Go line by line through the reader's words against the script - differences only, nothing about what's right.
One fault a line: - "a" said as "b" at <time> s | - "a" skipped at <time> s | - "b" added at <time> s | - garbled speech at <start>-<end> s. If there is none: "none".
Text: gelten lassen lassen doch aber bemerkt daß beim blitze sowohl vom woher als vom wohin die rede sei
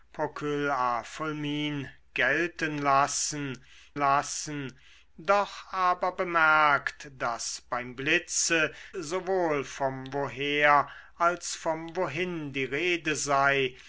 none